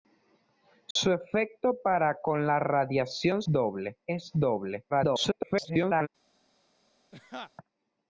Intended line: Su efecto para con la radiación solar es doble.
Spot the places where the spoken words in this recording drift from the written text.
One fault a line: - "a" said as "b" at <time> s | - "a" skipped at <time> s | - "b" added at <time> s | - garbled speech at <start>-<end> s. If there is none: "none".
- "solar" said as "doble" at 3.5 s
- garbled speech at 4.9-6.1 s